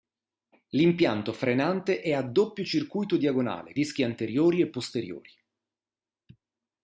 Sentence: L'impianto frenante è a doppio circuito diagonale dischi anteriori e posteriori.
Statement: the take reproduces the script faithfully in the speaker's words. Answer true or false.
true